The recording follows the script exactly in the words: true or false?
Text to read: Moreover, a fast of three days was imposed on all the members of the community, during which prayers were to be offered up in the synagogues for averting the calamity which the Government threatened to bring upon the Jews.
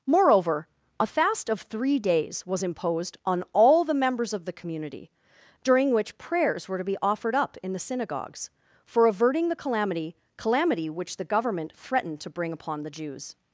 false